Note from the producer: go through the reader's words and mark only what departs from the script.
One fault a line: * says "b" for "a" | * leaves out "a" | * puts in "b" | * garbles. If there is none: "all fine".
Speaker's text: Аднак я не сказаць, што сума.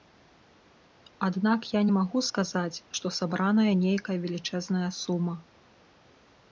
* puts in "магу"
* puts in "сабраная нейкая велічэзная"